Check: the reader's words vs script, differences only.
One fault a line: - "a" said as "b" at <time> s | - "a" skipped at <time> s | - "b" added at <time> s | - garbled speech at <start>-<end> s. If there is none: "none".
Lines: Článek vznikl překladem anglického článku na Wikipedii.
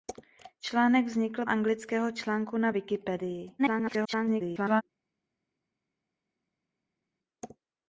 - "překladem" skipped at 1.4 s
- garbled speech at 3.6-4.8 s